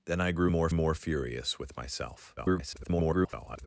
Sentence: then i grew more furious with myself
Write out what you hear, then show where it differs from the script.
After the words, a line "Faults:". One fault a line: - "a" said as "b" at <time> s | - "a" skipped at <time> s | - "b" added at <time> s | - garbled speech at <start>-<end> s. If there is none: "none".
then i grew more more furious with myself [garbled]
Faults:
- "more" added at 0.7 s
- garbled speech at 2.4-3.7 s